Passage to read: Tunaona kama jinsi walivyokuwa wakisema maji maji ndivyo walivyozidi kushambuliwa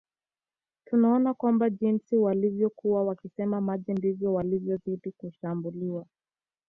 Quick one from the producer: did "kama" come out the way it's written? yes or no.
no